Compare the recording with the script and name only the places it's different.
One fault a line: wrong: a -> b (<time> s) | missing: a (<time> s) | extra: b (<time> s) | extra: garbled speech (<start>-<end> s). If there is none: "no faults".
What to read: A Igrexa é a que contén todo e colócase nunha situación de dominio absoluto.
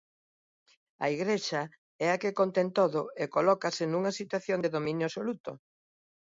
no faults